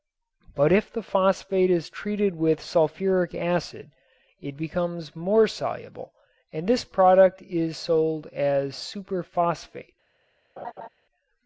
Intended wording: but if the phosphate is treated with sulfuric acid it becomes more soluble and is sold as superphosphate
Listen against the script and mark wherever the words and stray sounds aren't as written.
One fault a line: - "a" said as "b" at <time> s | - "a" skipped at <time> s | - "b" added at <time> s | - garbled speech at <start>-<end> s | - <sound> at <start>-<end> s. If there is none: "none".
- "this product" added at 6.7 s
- laugh at 10.6-10.9 s